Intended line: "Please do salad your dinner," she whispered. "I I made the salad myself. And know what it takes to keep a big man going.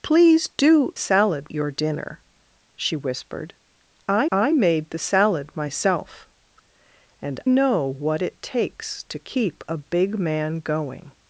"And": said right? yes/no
yes